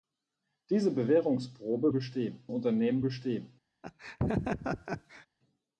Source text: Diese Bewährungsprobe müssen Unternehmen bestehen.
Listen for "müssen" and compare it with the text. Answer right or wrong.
wrong